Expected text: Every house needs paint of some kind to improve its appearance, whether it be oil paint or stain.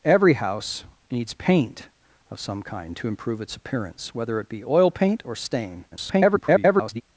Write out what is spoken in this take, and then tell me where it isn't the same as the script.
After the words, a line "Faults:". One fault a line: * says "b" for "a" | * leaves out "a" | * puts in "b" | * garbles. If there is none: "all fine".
Every house needs paint of some kind to improve its appearance, whether it be oil paint or stain. [garbled]
Faults:
* garbles